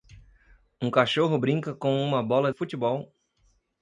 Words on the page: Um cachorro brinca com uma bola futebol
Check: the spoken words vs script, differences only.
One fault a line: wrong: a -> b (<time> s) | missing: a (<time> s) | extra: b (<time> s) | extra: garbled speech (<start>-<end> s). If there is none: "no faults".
no faults